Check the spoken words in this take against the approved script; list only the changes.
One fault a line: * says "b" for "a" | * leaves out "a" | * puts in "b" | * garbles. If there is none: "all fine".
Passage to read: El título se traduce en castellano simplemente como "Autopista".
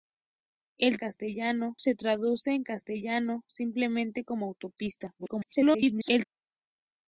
* says "castellano" for "título"
* garbles